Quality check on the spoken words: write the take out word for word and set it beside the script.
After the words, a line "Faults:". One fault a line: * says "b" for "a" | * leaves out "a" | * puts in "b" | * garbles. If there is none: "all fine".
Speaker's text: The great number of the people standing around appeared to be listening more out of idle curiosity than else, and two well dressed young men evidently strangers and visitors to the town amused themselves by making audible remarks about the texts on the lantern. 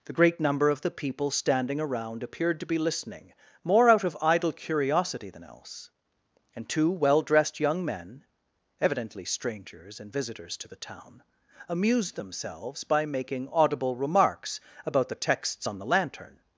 The great number of the people standing around appeared to be listening more out of idle curiosity than else, and two well dressed young men evidently strangers and visitors to the town amused themselves by making audible remarks about the texts on the lantern.
Faults:
all fine